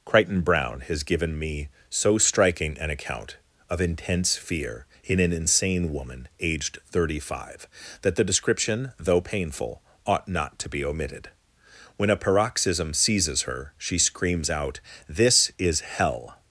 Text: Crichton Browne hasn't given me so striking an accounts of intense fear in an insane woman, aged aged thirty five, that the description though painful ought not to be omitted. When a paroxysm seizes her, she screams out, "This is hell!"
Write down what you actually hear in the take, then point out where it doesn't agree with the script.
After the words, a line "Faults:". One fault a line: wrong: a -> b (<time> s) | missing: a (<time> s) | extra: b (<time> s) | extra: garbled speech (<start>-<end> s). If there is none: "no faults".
Crichton Browne has given me so striking an account of intense fear in an insane woman, aged thirty five, that the description though painful ought not to be omitted. When a paroxysm seizes her, she screams out, "This is hell!"
Faults:
wrong: hasn't -> has (0.8 s)
wrong: accounts -> account (2.9 s)
missing: aged (6.8 s)